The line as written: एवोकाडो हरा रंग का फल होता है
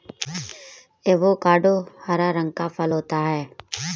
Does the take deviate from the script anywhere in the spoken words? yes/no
no